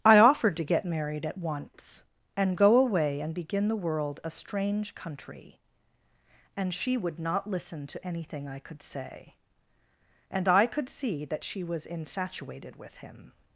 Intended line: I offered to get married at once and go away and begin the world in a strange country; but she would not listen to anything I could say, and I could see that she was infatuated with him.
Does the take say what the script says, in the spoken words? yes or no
no